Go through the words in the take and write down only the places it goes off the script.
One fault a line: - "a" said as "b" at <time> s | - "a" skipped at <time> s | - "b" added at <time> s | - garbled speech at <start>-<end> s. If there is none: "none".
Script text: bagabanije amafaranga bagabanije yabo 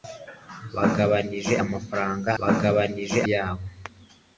none